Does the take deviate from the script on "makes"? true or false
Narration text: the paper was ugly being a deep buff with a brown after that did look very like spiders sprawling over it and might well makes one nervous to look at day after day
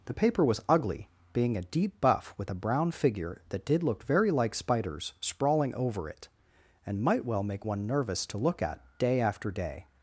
true